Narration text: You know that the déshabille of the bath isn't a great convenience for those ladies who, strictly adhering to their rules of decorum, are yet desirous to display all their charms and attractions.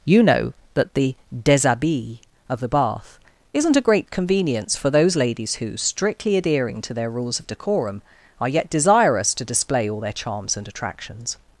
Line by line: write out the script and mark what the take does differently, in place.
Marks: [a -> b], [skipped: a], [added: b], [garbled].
You know that the déshabille of the bath isn't a great convenience for those ladies who, strictly adhering to their rules of decorum, are yet desirous to display all their charms and attractions.